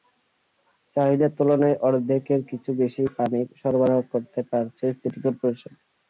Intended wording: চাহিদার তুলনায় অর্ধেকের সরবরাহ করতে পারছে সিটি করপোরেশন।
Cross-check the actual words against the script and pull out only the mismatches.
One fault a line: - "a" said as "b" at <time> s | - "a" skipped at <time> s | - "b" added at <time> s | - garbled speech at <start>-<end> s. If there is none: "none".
- "কিছু বেশি পানি" added at 2.5 s